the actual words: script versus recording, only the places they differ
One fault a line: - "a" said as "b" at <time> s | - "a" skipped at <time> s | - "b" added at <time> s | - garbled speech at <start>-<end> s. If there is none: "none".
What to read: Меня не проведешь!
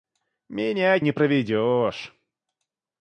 none